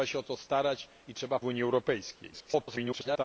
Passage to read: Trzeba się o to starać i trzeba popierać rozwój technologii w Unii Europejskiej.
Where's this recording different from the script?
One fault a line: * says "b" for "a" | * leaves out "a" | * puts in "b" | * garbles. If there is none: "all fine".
* leaves out "popierać rozwój technologii"
* garbles